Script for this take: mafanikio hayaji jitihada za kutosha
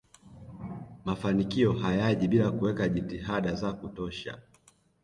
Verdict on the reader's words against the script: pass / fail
fail